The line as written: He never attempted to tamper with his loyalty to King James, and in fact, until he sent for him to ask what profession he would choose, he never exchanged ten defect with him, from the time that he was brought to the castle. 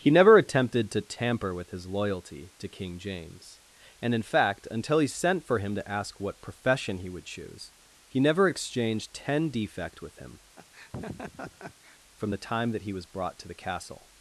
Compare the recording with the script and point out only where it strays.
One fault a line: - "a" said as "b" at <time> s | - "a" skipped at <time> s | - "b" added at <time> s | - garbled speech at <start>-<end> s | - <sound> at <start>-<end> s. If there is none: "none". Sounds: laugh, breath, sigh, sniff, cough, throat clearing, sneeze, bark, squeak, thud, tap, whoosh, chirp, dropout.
- laugh at 10.6-12.0 s